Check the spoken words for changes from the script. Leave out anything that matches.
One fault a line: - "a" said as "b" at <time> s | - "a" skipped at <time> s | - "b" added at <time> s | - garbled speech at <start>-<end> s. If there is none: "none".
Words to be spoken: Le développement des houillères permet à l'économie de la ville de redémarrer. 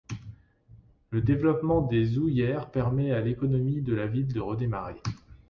none